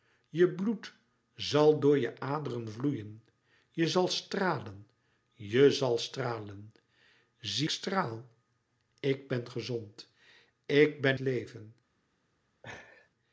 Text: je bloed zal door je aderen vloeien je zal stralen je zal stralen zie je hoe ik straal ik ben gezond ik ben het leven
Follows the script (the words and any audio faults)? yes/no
no